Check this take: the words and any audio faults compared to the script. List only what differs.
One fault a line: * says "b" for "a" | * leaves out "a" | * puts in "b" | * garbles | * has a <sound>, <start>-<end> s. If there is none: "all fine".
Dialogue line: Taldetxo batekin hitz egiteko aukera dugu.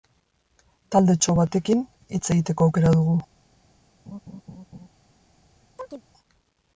* has a laugh, 4.1-4.9 s
* has a chirp, 5.8-6.0 s